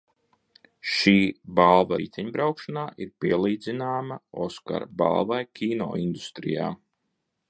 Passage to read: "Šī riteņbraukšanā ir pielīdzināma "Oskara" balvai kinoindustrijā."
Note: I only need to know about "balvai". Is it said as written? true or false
true